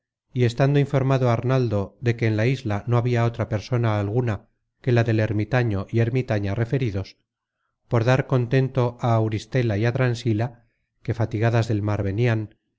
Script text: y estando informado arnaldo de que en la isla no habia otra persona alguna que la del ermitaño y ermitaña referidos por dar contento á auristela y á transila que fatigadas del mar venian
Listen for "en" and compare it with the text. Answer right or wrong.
right